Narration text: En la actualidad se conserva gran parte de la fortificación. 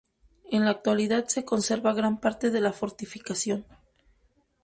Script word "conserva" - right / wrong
right